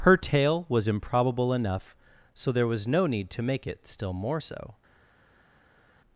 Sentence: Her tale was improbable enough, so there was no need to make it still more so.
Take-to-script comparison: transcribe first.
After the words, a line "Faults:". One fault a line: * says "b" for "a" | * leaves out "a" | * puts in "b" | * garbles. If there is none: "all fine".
Her tale was improbable enough, so there was no need to make it still more so.
Faults:
all fine